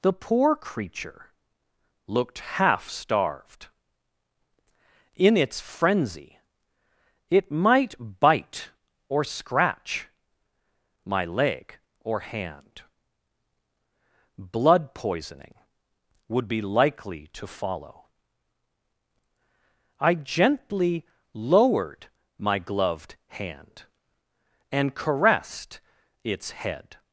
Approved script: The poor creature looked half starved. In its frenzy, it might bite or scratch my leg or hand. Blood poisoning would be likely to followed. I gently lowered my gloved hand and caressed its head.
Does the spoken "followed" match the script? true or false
false